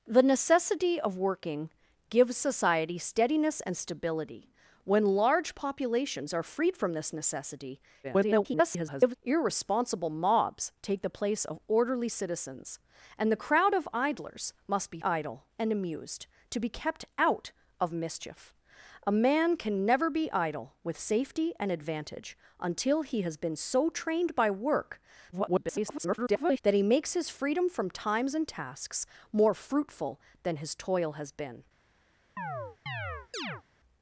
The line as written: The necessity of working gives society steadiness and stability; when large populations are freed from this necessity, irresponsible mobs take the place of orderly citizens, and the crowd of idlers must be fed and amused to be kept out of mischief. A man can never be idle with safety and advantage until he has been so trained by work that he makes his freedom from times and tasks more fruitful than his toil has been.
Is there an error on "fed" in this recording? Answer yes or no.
yes